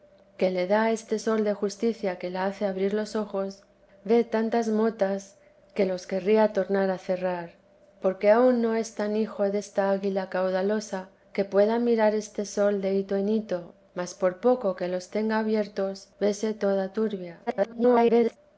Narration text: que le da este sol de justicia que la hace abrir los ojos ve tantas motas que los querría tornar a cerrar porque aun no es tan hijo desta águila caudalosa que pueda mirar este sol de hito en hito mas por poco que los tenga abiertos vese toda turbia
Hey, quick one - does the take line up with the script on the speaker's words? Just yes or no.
no